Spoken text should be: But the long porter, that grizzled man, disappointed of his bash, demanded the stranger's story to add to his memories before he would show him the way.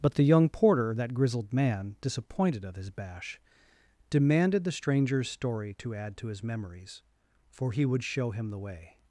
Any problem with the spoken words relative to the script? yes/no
yes